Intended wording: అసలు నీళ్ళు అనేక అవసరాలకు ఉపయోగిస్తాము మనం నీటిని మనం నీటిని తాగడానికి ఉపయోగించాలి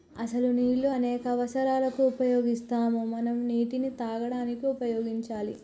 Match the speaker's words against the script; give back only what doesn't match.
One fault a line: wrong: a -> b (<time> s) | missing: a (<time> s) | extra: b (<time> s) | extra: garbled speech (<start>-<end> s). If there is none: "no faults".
missing: మనం నీటిని (3.9 s)